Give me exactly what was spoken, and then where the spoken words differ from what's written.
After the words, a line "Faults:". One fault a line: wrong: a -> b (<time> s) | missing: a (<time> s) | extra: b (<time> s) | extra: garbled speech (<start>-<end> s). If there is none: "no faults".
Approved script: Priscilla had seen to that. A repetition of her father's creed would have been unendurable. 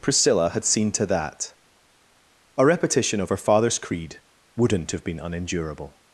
Priscilla had seen to that. A repetition of her father's creed wouldn't have been unendurable.
Faults:
wrong: would -> wouldn't (4.6 s)